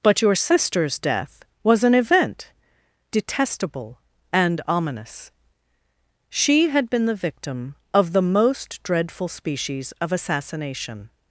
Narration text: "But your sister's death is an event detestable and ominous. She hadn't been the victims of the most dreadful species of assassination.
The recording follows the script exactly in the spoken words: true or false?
false